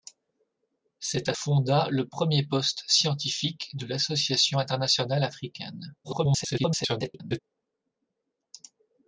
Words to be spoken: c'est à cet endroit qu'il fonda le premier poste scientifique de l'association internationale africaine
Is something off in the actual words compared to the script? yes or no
yes